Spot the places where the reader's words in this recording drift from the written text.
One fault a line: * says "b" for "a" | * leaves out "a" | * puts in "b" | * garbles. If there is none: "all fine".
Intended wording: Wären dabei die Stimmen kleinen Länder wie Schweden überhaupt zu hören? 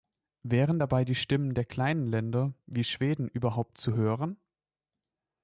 * puts in "der"